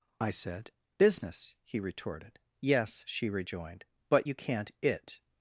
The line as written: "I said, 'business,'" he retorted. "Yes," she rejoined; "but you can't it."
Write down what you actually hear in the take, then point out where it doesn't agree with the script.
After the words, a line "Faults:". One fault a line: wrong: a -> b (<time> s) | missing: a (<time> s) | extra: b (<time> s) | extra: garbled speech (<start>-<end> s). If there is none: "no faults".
"I said, 'business,'" he retorted. "Yes," she rejoined; "but you can't it."
Faults:
no faults